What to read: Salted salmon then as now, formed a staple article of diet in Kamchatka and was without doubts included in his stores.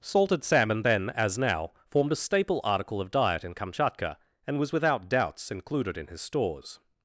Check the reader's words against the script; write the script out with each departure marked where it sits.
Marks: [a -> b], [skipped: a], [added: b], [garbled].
Salted salmon then as now, formed a staple article of diet in Kamchatka and was without doubts included in his stores.